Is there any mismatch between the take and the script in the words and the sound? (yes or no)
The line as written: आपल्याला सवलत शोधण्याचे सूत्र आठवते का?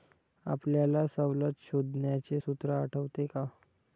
no